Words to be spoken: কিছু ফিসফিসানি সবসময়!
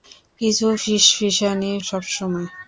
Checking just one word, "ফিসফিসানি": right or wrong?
right